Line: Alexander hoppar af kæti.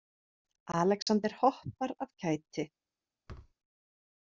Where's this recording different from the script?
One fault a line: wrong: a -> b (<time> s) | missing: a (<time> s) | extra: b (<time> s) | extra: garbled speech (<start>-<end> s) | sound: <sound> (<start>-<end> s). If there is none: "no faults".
sound: dropout (1.0-1.1 s)
sound: thud (3.3-3.5 s)